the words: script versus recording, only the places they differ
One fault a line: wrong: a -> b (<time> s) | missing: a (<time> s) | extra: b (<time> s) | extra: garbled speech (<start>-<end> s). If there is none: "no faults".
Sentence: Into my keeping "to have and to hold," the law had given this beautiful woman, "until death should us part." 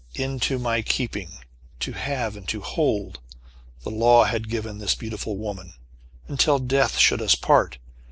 no faults